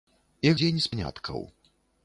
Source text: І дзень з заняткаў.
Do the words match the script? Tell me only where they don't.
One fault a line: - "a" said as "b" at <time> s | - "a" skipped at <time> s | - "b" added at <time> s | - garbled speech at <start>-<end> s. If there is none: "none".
none